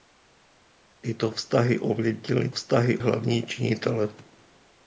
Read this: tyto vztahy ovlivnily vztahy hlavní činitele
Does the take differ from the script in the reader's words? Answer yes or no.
no